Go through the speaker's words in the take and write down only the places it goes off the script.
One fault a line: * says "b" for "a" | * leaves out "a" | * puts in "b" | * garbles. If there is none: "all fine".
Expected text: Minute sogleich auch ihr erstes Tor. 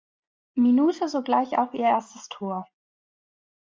all fine